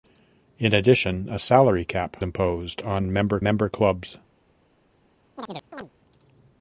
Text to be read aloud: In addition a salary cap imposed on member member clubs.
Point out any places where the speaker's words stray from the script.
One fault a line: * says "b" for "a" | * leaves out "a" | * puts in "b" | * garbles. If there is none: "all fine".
all fine